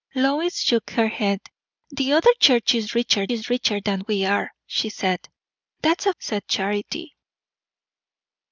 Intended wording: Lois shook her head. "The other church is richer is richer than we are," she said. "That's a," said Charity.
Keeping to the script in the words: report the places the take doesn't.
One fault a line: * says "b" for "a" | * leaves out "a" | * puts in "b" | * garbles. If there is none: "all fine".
all fine